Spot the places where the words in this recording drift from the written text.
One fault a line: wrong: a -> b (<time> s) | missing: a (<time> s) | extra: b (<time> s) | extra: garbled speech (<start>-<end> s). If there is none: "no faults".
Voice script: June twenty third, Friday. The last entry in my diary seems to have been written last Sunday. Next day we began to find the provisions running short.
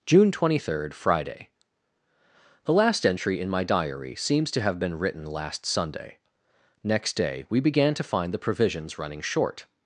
no faults